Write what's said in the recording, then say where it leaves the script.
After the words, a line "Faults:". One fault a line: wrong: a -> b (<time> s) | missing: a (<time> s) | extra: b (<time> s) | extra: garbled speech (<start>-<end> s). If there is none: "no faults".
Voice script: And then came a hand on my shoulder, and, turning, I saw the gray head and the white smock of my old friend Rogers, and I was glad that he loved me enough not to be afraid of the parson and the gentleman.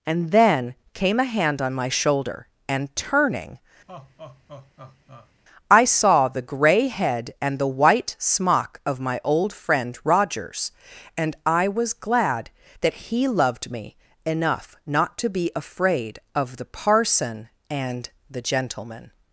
And then came a hand on my shoulder, and, turning, I saw the gray head and the white smock of my old friend Rogers, and I was glad that he loved me enough not to be afraid of the parson and the gentleman.
Faults:
no faults